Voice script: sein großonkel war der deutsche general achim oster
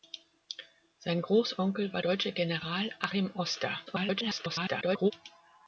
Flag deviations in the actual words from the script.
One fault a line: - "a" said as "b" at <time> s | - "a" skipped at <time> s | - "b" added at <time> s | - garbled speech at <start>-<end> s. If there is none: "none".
- "der" skipped at 2.0 s
- garbled speech at 3.9-5.1 s